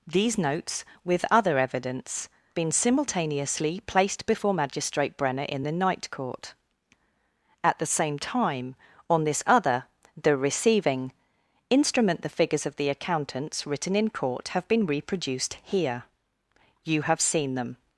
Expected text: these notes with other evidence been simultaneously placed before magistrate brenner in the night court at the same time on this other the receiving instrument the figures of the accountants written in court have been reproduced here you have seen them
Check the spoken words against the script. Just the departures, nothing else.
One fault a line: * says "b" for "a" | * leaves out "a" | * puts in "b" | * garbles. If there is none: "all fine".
all fine